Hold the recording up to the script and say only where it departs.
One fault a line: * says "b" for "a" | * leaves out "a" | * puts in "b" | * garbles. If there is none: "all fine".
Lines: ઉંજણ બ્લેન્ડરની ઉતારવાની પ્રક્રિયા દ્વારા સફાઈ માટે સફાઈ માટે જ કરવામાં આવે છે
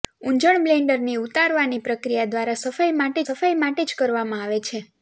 all fine